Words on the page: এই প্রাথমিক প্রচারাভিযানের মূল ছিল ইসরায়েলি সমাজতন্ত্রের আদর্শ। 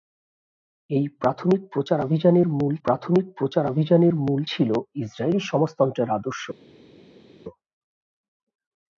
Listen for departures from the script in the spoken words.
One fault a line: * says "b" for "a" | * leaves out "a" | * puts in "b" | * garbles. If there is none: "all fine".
* puts in "প্রাথমিক প্রচারাভিযানের মূল"